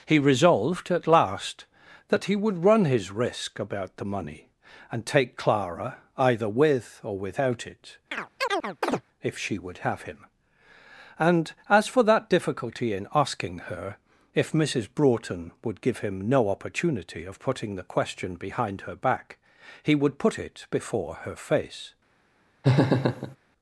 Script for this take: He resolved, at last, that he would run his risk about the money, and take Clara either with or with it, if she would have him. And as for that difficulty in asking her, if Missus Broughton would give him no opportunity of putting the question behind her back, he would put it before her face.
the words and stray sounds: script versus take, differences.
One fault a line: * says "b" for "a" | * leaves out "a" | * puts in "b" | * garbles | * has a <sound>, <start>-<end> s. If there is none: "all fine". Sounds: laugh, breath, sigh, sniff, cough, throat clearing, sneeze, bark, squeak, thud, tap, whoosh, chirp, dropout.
* says "without" for "with"
* has a chirp, 8.1-9.0 s
* has a laugh, 22.6-23.4 s